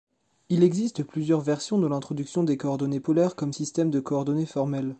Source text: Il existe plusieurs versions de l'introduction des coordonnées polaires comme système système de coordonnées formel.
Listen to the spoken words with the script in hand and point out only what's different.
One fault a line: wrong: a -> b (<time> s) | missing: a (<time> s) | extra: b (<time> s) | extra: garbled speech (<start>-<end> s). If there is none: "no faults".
missing: système (3.9 s)